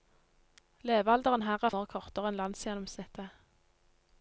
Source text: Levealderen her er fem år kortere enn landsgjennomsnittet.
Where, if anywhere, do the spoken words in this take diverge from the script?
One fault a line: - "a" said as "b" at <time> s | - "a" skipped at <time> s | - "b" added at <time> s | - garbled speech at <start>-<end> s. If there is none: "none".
- "fem" skipped at 1.7 s